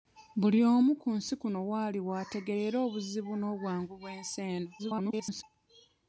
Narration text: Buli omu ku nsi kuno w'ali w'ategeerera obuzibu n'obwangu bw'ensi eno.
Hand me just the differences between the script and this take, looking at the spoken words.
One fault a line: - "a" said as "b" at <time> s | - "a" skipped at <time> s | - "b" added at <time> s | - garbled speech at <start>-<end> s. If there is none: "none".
- garbled speech at 4.8-5.4 s